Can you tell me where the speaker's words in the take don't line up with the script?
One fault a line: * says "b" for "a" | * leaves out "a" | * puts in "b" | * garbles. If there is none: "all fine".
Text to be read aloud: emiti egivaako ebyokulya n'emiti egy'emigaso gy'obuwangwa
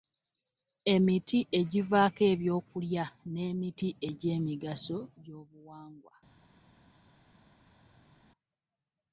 all fine